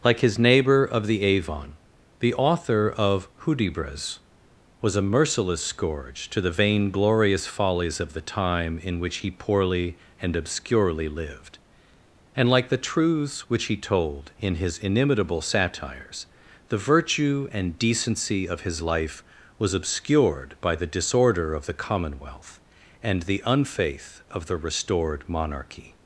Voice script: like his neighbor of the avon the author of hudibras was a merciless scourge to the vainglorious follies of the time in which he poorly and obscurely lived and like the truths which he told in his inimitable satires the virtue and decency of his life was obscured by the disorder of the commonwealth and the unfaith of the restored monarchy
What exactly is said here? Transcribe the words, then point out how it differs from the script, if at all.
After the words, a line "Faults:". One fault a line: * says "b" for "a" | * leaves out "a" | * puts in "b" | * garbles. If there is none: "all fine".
like his neighbor of the avon the author of hudibras was a merciless scourge to the vainglorious follies of the time in which he poorly and obscurely lived and like the truths which he told in his inimitable satires the virtue and decency of his life was obscured by the disorder of the commonwealth and the unfaith of the restored monarchy
Faults:
all fine